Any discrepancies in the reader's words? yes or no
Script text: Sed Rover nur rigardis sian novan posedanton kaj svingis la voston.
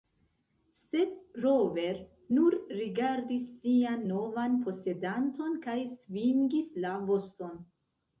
no